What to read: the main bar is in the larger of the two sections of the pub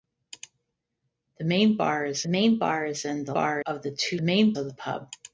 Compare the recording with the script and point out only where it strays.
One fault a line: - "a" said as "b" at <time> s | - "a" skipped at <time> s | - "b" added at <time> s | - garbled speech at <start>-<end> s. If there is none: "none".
- "main bar is" added at 2.3 s
- "larger" said as "bar" at 3.3 s
- "sections" said as "main" at 4.2 s